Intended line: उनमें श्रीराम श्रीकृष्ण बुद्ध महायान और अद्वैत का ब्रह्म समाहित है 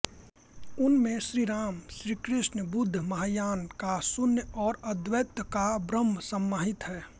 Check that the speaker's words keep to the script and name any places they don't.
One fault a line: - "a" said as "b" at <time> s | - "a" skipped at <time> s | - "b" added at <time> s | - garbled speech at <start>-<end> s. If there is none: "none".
- "का शून्य" added at 3.8 s